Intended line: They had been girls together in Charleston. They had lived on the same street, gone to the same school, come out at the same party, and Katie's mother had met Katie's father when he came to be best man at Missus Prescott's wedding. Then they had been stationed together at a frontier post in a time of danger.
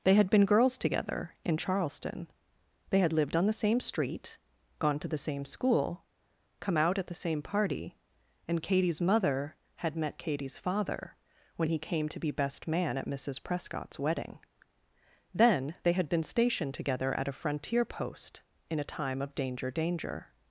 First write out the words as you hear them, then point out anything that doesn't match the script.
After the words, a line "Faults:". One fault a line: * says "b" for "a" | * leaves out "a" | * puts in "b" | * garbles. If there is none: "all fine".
They had been girls together in Charleston. They had lived on the same street, gone to the same school, come out at the same party, and Katie's mother had met Katie's father when he came to be best man at Missus Prescott's wedding. Then they had been stationed together at a frontier post in a time of danger danger.
Faults:
* puts in "danger"